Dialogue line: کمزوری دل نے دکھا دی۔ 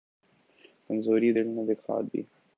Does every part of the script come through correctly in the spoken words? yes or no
yes